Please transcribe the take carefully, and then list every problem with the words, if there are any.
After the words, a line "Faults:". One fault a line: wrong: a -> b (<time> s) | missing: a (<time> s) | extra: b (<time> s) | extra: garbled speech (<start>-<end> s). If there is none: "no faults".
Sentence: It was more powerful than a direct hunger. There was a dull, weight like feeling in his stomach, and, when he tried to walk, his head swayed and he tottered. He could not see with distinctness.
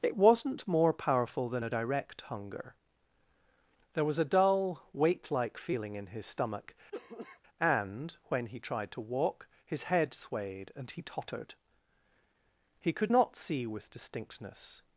It wasn't more powerful than a direct hunger. There was a dull, weight like feeling in his stomach, and, when he tried to walk, his head swayed and he tottered. He could not see with distinctness.
Faults:
wrong: was -> wasn't (0.2 s)